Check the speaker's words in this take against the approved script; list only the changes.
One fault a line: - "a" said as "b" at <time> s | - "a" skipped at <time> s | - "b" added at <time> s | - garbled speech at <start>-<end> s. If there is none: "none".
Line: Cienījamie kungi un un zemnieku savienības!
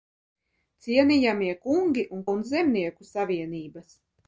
none